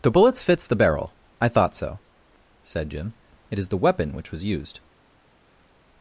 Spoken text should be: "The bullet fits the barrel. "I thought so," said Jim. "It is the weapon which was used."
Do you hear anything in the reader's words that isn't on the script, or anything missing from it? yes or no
yes